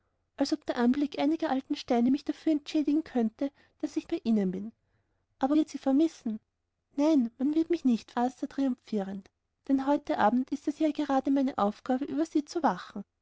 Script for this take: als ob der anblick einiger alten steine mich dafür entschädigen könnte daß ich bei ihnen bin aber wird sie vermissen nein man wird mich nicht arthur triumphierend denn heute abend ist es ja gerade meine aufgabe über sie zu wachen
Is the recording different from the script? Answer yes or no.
no